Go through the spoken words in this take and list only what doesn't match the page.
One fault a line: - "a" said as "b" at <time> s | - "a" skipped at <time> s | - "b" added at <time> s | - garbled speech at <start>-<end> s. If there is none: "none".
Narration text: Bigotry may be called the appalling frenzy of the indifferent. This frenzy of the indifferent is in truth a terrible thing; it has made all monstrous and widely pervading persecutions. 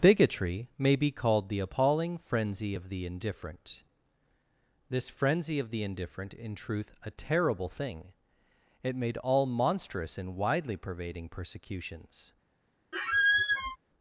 - "is" skipped at 6.3 s
- "has" skipped at 9.0 s